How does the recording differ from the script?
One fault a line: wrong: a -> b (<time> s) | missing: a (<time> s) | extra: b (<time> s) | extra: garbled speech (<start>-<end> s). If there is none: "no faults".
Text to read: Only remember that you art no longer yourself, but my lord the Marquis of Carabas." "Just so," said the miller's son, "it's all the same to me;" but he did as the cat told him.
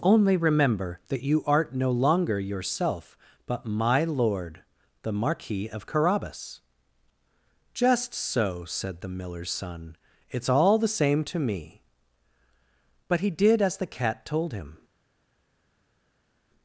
no faults